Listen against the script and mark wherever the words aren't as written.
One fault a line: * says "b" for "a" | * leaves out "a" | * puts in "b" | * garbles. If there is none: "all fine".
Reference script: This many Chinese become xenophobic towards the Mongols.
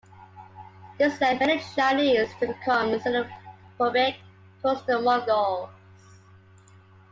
* puts in "led"
* puts in "to"